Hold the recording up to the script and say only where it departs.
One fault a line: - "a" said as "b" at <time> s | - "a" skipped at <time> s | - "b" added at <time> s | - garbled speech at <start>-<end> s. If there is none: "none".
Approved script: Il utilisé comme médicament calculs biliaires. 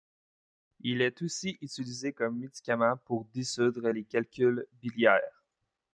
- "est aussi" added at 1.0 s
- "pour dissoudre les" added at 3.1 s